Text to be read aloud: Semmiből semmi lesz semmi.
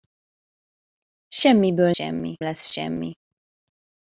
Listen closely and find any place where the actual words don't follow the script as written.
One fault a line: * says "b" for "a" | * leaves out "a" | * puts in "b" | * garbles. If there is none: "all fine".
all fine